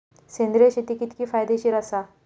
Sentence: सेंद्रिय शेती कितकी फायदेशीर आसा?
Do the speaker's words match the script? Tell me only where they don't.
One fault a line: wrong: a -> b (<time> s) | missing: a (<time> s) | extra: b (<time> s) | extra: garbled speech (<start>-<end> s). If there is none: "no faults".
no faults